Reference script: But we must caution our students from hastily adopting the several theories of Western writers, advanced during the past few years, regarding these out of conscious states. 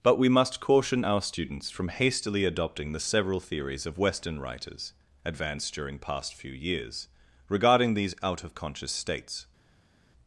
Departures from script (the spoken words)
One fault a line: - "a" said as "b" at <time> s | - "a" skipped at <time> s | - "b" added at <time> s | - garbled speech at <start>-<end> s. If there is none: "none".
- "the" skipped at 6.0 s